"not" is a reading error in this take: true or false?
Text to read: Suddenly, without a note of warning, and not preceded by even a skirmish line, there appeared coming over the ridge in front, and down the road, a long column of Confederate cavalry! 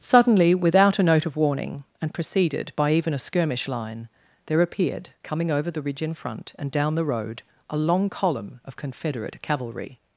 true